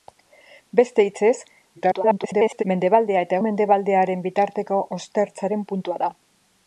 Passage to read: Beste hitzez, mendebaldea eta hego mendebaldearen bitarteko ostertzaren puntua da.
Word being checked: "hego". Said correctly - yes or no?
no